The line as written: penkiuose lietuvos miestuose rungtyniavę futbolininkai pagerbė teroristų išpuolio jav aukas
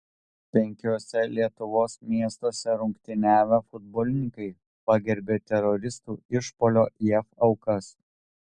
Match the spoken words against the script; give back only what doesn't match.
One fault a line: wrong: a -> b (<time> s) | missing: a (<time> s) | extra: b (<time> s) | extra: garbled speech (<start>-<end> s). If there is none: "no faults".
no faults